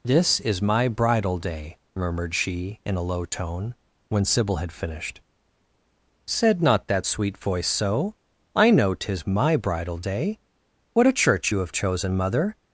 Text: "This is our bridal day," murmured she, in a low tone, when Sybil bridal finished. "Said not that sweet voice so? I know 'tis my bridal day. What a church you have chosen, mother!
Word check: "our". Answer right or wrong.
wrong